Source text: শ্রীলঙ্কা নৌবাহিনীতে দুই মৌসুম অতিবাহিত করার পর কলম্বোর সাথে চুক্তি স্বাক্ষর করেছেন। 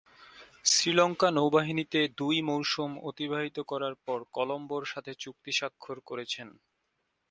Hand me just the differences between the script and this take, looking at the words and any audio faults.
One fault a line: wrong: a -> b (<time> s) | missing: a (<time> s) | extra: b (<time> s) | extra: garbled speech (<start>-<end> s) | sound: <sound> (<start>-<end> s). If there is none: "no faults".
no faults